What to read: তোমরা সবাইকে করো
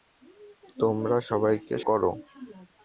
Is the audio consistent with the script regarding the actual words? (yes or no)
yes